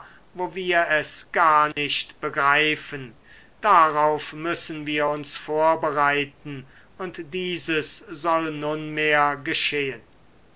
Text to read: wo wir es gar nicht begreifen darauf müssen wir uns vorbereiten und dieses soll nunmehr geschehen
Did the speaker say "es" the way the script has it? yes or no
yes